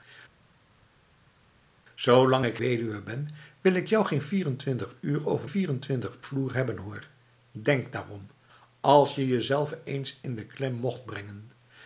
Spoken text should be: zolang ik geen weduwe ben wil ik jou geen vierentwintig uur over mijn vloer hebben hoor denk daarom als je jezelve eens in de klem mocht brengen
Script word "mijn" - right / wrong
wrong